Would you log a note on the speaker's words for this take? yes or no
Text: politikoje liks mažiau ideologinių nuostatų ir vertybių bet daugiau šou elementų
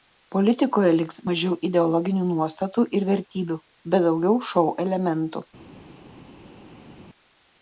no